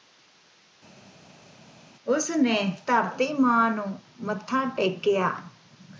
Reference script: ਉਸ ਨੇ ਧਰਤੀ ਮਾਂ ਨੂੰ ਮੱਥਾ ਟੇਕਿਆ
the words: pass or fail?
pass